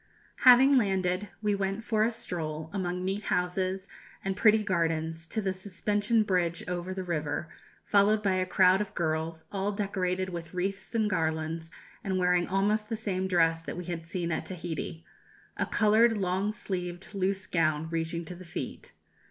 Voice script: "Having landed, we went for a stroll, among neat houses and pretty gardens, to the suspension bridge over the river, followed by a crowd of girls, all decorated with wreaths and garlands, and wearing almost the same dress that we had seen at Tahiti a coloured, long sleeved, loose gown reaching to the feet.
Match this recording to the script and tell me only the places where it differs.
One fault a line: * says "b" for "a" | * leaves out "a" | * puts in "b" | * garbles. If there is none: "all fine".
all fine